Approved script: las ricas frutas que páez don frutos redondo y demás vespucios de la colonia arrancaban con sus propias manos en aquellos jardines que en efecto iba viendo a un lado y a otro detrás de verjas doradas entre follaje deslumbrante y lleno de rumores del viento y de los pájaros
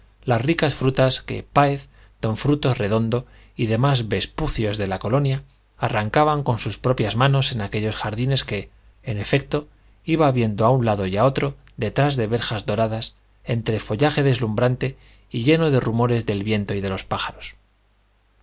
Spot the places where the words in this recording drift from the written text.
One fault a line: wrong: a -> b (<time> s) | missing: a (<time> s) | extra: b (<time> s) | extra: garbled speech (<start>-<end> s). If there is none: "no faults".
no faults